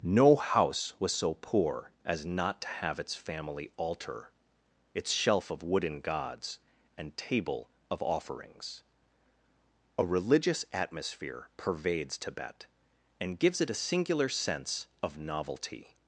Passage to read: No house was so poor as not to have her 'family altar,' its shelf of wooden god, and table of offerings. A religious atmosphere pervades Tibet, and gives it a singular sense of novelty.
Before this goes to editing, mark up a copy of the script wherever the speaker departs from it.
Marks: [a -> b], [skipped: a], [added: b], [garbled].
No house was so poor as not to have [her -> its] 'family altar,' its shelf of wooden [god, -> gods] and table of offerings. A religious atmosphere pervades Tibet, and gives it a singular sense of novelty.